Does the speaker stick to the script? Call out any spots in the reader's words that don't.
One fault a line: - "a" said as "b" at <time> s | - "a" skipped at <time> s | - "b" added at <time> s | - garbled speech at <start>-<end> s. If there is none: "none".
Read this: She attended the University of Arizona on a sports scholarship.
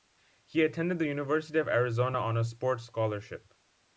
- "She" said as "He" at 0.4 s